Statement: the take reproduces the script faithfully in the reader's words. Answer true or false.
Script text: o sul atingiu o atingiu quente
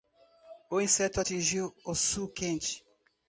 false